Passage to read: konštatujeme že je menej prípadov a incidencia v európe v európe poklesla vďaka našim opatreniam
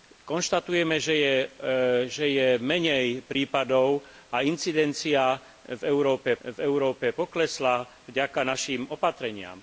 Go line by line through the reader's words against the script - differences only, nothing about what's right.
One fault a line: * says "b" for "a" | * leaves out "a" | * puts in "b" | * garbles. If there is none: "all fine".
all fine